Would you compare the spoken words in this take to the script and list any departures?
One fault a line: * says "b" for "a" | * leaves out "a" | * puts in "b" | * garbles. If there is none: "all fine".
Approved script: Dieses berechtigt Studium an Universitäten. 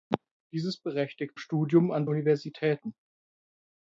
all fine